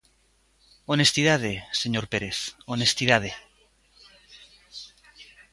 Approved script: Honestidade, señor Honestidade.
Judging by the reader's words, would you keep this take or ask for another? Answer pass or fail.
fail